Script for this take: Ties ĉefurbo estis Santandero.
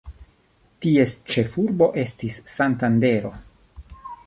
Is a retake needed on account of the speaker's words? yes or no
no